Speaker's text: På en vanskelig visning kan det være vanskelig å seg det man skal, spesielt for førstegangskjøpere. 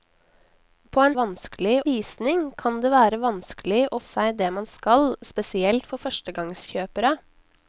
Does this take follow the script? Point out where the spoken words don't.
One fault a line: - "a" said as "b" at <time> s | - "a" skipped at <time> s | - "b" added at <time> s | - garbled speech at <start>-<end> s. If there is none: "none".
none